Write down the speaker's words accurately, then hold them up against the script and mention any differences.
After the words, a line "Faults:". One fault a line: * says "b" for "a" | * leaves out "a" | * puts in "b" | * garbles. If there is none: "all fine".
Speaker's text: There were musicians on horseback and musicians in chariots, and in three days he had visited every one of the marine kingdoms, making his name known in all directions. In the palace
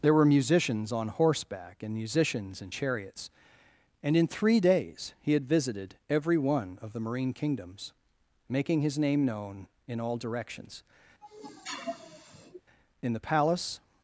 There were musicians on horseback and musicians in chariots, and in three days he had visited every one of the marine kingdoms, making his name known in all directions. In the palace
Faults:
all fine